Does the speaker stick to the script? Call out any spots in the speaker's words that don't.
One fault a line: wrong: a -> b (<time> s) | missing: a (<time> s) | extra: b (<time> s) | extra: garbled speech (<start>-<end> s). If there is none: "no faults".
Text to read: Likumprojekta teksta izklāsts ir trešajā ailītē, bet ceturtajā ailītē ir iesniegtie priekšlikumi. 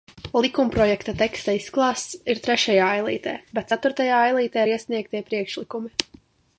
no faults